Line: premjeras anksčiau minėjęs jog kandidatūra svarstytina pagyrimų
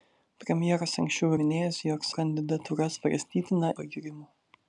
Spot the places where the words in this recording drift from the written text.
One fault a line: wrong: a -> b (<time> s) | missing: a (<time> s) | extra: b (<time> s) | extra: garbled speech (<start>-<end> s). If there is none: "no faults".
no faults